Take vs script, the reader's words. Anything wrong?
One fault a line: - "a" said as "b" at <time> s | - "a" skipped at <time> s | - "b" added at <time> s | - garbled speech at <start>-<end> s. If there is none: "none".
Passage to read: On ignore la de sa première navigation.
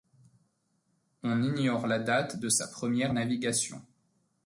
- "date" added at 2.0 s